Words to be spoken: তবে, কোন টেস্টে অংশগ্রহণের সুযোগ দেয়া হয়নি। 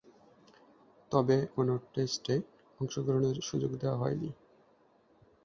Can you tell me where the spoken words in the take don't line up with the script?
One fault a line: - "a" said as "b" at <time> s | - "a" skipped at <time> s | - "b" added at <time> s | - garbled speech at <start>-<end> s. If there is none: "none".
none